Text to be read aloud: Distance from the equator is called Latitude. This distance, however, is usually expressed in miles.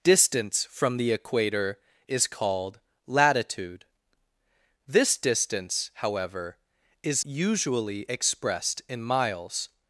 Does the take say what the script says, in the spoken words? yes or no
yes